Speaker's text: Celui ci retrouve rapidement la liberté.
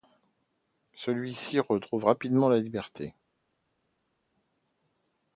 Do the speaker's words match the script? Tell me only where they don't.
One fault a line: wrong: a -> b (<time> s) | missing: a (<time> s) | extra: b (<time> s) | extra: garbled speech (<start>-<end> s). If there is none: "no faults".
no faults